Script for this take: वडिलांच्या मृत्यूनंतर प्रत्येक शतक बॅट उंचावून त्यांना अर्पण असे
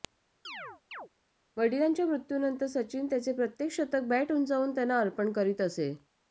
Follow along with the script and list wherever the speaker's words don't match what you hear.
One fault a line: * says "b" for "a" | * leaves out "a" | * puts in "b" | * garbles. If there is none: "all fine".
* puts in "सचिन त्याचे"
* puts in "करीत"